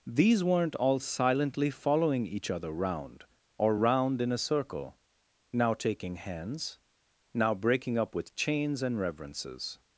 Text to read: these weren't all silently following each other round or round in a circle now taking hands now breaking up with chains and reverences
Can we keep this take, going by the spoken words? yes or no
yes